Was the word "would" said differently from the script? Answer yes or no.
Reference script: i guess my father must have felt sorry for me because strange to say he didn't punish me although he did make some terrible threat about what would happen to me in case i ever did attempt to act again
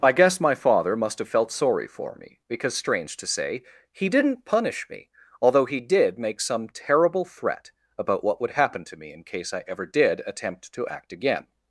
no